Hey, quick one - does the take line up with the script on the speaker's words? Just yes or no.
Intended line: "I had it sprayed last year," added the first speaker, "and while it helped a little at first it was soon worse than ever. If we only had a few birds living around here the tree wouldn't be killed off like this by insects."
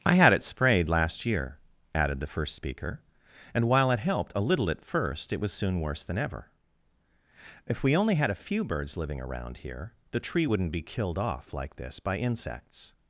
yes